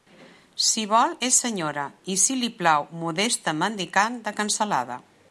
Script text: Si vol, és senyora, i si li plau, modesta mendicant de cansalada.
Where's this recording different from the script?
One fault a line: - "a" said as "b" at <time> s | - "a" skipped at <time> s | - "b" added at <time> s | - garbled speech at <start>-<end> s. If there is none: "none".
none